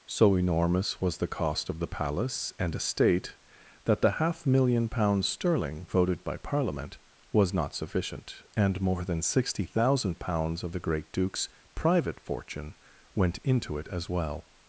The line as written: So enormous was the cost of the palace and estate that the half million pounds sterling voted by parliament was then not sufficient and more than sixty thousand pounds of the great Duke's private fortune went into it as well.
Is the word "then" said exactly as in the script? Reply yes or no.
no